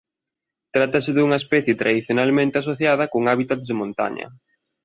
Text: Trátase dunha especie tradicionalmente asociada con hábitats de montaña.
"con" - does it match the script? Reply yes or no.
yes